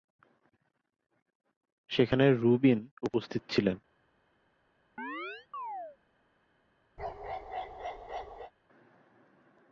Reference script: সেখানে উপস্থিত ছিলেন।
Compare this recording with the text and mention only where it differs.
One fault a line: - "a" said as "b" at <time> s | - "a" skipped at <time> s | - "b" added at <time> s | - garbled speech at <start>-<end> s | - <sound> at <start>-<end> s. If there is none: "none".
- "রুবিন" added at 2.3 s
- chirp at 5.0-6.0 s
- bark at 7.0-8.5 s